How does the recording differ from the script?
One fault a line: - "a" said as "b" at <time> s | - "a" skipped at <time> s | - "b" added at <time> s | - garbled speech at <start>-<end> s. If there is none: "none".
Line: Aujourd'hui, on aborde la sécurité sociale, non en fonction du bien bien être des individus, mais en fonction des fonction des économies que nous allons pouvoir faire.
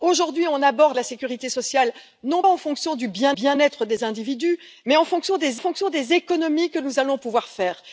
none